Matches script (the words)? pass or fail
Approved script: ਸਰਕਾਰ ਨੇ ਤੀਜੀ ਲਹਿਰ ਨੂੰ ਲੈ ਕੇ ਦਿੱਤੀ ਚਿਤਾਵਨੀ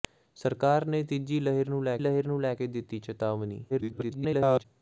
fail